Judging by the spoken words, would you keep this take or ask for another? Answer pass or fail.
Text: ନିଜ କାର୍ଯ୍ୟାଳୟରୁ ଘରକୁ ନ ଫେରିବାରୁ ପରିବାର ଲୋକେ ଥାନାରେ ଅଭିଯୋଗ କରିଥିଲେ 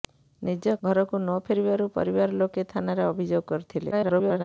fail